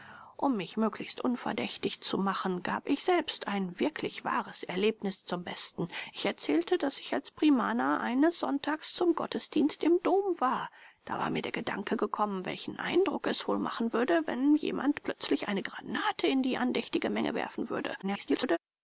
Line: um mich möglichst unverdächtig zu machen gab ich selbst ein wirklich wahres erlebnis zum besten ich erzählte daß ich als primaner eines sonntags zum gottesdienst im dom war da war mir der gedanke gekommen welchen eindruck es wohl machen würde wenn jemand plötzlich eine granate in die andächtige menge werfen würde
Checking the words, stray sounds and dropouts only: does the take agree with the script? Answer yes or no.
no